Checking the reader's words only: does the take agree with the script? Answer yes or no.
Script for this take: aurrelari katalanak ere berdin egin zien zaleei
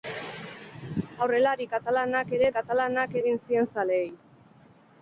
no